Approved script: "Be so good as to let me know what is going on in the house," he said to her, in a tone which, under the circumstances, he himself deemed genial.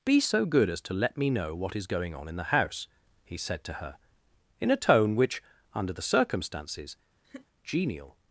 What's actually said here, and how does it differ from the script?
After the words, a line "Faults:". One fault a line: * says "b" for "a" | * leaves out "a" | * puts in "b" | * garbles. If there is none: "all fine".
"Be so good as to let me know what is going on in the house," he said to her, in a tone which, under the circumstances, genial.
Faults:
* leaves out "he himself deemed"